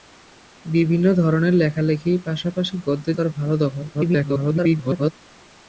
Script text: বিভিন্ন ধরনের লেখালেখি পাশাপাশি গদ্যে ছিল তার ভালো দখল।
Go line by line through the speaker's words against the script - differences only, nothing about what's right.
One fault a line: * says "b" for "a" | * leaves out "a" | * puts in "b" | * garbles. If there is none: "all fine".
* leaves out "ছিল"
* garbles